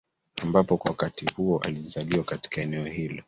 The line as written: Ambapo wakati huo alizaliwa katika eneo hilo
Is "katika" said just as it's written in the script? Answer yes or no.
yes